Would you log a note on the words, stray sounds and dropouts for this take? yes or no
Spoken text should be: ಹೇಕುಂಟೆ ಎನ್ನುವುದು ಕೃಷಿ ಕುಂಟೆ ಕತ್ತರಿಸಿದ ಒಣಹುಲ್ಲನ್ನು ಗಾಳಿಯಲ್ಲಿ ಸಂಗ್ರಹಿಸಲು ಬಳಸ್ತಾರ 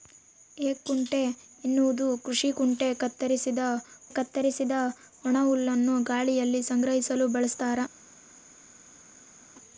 yes